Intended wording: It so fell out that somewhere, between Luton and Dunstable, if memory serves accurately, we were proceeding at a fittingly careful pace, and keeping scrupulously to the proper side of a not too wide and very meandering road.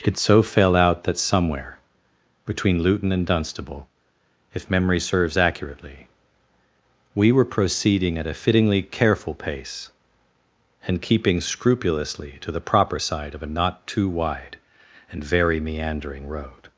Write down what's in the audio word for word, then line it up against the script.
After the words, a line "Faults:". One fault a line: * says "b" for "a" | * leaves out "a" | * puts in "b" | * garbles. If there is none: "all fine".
It so fell out that somewhere, between Luton and Dunstable, if memory serves accurately, we were proceeding at a fittingly careful pace, and keeping scrupulously to the proper side of a not too wide and very meandering road.
Faults:
all fine